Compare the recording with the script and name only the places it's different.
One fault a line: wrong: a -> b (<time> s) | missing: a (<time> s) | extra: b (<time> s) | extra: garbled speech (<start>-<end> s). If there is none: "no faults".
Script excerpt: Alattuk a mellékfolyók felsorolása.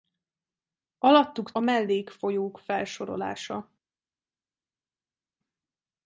no faults